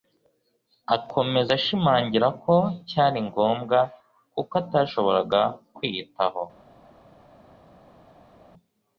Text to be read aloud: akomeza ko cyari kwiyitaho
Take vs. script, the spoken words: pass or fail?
fail